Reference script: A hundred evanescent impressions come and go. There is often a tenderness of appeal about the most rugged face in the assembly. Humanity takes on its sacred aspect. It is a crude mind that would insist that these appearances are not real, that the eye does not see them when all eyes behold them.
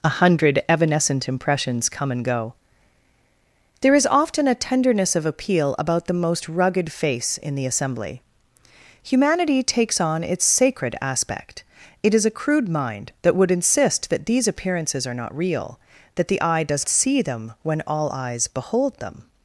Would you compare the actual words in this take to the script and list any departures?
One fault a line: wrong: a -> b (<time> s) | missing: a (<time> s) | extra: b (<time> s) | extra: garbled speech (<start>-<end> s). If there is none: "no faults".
missing: not (16.9 s)